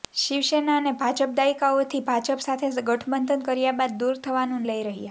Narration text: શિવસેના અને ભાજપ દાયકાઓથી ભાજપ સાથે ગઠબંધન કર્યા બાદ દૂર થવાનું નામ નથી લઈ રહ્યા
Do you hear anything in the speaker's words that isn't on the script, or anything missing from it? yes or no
yes